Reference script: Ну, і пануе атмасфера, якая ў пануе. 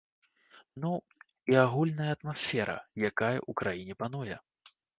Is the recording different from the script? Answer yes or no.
yes